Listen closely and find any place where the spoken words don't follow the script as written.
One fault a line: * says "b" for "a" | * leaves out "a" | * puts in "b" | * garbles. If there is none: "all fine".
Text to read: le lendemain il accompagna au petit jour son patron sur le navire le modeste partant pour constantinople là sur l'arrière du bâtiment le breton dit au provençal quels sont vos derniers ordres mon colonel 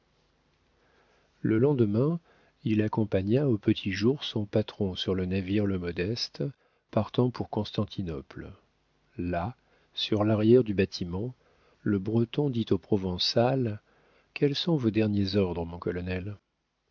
all fine